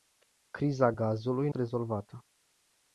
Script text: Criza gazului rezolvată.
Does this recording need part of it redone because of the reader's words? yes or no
no